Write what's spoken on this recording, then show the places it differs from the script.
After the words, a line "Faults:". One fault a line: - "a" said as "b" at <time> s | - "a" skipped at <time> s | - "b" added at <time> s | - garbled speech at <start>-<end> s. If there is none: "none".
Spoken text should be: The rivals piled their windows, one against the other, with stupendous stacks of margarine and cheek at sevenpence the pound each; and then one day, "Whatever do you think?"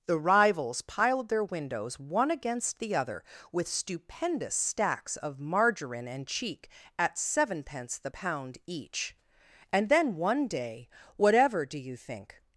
The rivals piled their windows, one against the other, with stupendous stacks of margarine and cheek at sevenpence the pound each; and then one day, "Whatever do you think?"
Faults:
none